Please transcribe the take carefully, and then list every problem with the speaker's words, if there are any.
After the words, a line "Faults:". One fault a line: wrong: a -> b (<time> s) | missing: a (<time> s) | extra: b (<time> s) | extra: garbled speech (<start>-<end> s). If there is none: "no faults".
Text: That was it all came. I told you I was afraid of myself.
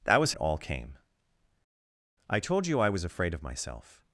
That was it all came. I told you I was afraid of myself.
Faults:
no faults